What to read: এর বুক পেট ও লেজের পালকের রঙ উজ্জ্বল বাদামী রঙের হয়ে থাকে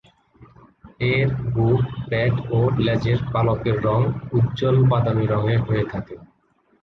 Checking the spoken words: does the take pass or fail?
pass